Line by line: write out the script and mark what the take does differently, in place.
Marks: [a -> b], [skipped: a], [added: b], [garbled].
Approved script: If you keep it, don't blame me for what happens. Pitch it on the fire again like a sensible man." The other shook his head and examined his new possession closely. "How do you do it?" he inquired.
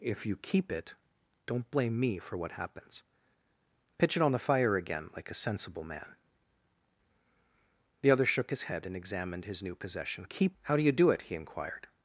If you keep it, don't blame me for what happens. Pitch it on the fire again like a sensible man." The other shook his head and examined his new possession [closely. -> keep] "How do you do it?" he inquired.